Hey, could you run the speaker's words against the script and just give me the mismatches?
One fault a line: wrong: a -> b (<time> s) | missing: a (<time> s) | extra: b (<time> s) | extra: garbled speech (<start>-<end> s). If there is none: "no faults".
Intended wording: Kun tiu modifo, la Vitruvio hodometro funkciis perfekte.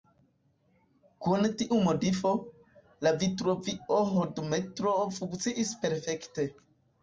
no faults